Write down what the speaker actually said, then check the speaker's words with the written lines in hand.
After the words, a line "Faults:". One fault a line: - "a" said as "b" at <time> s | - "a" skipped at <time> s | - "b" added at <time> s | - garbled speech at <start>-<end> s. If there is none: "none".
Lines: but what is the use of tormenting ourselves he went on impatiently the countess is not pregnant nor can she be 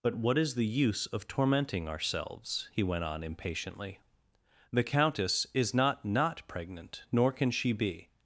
but what is the use of tormenting ourselves he went on impatiently the countess is not not pregnant nor can she be
Faults:
- "not" added at 6.0 s